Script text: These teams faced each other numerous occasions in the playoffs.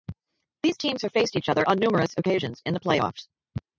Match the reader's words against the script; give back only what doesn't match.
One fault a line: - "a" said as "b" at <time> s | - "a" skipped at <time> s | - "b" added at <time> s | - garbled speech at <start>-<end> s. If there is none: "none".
- "have" added at 1.0 s
- "on" added at 1.7 s